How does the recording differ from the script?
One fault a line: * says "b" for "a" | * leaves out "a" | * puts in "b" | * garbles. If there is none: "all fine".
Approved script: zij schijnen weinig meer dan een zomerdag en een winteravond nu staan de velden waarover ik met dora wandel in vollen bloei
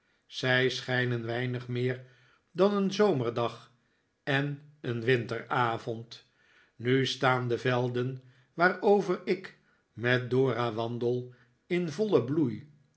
all fine